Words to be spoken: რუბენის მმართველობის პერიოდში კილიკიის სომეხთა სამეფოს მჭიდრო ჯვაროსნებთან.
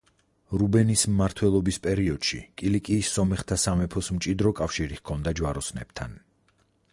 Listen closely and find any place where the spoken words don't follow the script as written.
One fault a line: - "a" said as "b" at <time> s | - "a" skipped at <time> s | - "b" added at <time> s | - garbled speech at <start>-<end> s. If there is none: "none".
- "კავშირი ჰქონდა" added at 4.6 s